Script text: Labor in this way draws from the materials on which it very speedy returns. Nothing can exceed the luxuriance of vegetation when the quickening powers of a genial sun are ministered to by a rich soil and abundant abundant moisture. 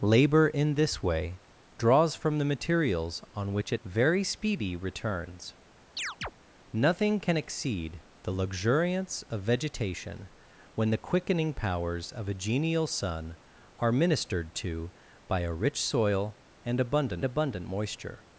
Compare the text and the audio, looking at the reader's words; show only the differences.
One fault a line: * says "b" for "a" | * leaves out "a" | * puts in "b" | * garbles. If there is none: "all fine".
all fine